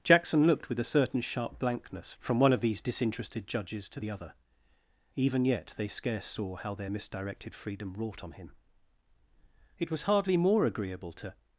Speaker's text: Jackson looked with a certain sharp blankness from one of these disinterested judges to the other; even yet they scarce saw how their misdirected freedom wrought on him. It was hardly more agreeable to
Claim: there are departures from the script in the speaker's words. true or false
false